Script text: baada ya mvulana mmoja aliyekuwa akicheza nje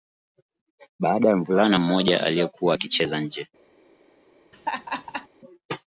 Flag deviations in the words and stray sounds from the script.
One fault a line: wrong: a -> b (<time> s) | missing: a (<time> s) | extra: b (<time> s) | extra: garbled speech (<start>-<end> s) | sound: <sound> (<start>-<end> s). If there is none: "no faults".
sound: laugh (4.5-5.3 s)